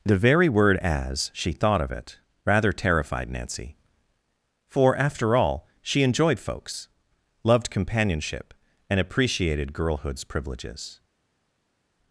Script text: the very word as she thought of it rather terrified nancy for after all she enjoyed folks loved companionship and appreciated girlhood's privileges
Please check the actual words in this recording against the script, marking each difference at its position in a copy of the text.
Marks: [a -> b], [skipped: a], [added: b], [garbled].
the very word as she thought of it rather terrified nancy for after all she enjoyed folks loved companionship and appreciated girlhood's privileges